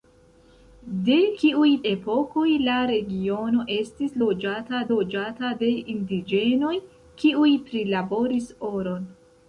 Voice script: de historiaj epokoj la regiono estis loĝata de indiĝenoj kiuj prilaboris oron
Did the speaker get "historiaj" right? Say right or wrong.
wrong